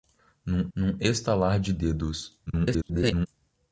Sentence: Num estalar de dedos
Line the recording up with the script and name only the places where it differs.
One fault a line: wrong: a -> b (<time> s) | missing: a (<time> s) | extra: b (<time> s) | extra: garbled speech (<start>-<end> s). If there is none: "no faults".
extra: num (0.7 s)
extra: garbled speech (2.5-3.3 s)